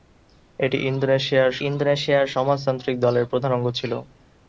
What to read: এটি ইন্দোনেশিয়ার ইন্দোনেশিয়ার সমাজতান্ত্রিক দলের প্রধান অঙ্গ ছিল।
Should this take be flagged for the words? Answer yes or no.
no